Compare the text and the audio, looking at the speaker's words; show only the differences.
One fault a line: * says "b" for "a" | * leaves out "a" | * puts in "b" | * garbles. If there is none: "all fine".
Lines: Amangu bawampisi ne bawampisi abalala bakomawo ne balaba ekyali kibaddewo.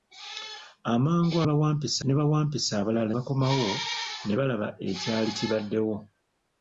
all fine